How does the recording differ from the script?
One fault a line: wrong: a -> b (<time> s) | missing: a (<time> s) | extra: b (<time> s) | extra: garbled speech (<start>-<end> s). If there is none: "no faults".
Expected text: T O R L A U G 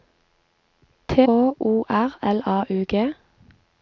no faults